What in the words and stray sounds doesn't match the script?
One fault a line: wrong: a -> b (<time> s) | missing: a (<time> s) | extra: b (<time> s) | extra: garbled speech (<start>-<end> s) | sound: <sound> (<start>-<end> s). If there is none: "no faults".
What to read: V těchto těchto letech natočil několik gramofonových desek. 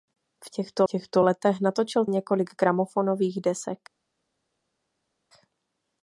no faults